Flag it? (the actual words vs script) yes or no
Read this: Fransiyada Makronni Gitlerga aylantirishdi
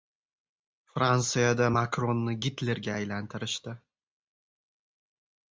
no